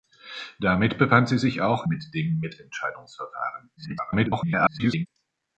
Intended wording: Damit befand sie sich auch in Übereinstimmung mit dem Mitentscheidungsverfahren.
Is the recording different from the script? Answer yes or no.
yes